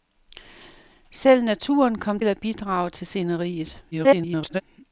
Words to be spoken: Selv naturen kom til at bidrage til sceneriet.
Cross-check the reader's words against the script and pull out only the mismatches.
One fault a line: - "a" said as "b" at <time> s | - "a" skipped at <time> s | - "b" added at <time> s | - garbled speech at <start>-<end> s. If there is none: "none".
- "til" skipped at 2.2 s
- garbled speech at 3.9-4.6 s